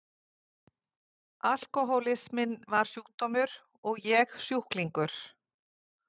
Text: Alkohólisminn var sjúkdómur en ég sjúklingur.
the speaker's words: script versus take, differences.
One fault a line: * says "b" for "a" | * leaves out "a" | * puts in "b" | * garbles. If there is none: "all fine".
* says "og" for "en"